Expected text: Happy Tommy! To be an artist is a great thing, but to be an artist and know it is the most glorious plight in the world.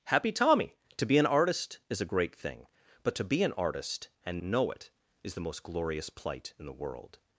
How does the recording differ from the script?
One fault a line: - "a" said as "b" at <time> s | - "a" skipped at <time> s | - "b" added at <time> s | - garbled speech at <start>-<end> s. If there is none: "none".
none